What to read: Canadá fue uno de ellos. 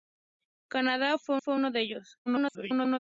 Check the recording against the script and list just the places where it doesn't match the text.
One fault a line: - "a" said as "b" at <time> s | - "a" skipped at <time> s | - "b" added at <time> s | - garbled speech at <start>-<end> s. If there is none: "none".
- "fue" added at 1.4 s
- garbled speech at 2.3-3.0 s